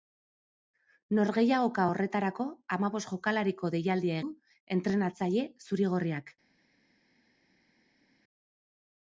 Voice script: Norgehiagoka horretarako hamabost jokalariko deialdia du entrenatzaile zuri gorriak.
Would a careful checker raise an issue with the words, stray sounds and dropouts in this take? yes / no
no